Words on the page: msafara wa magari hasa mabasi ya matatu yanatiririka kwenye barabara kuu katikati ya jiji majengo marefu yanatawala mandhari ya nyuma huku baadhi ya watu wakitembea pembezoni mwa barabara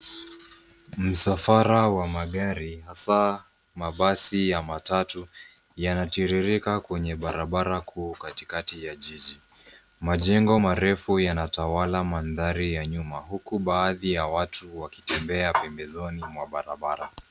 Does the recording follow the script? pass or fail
pass